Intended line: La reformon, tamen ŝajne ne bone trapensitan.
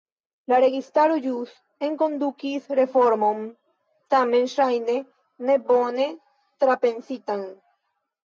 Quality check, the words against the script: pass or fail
fail